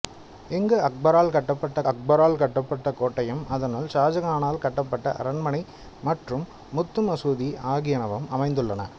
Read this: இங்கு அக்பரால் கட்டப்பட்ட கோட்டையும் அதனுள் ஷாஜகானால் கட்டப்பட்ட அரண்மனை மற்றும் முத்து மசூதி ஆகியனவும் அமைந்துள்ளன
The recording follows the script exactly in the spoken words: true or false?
false